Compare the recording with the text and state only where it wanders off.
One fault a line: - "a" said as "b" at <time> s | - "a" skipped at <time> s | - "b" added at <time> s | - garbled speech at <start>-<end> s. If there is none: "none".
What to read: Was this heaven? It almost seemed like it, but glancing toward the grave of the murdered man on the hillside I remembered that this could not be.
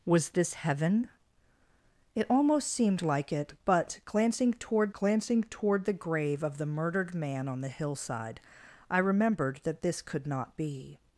- "glancing toward" added at 4.9 s